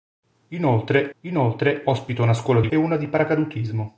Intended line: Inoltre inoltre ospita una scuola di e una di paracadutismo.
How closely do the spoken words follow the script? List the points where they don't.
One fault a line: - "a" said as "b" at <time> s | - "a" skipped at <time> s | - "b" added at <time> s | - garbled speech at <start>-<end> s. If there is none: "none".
none